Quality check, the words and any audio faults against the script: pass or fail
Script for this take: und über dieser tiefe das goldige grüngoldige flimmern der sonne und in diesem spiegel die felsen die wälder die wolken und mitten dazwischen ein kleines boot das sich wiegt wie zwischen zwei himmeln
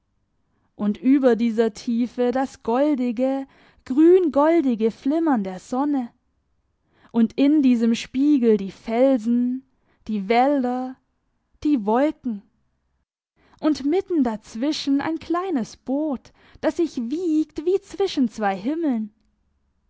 pass